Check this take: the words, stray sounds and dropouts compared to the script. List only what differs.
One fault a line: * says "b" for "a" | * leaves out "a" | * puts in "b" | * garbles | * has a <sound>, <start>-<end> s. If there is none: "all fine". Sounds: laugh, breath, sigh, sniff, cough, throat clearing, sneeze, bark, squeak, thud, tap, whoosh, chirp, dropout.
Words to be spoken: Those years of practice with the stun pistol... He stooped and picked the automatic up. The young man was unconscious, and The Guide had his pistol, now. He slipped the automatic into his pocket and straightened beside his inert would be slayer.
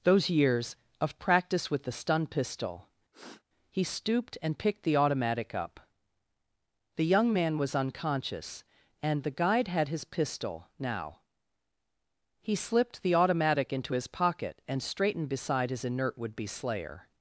* has a sniff, 3.1-3.4 s